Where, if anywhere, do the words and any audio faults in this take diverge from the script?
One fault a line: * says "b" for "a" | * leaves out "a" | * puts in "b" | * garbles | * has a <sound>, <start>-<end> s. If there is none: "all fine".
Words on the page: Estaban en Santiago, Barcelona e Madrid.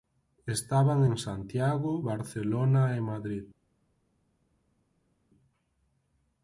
all fine